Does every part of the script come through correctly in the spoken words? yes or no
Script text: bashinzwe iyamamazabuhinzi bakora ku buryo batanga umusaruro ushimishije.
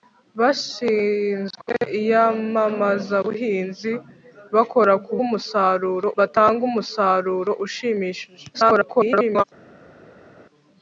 no